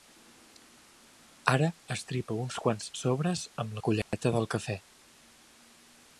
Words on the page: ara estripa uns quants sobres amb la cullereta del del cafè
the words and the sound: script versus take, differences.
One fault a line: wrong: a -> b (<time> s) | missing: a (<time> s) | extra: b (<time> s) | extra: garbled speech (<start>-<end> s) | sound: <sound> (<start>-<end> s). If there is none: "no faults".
sound: dropout (4.0-4.1 s)
missing: del (4.5 s)